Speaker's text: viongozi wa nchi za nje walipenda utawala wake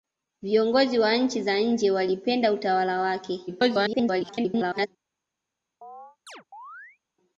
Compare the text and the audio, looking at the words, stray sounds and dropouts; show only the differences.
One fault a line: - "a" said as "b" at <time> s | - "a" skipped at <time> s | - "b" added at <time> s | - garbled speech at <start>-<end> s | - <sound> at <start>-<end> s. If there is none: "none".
- garbled speech at 3.5-4.9 s
- chirp at 5.8-7.0 s